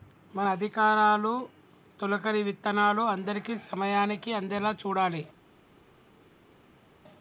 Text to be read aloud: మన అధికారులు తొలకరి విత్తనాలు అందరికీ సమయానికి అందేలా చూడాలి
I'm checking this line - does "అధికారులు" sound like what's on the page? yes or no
yes